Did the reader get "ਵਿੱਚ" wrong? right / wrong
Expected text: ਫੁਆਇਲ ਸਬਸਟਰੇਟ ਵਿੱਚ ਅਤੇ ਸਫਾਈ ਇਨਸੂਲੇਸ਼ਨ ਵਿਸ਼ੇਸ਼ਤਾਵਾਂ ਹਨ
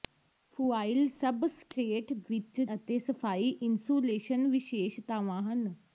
right